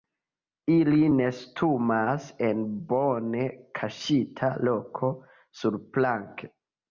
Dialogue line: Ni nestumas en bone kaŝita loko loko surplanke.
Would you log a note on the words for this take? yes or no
yes